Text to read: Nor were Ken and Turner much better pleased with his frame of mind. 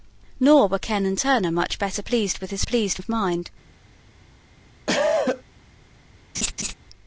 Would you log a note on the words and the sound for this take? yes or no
yes